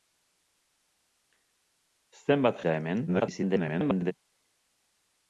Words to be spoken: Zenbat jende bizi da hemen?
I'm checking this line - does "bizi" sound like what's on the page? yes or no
no